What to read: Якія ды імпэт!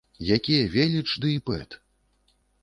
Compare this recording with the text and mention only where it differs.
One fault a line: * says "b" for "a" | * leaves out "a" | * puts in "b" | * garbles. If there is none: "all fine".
* puts in "веліч"